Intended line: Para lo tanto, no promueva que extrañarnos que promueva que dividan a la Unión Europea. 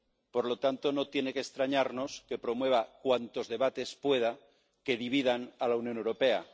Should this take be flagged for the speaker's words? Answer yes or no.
yes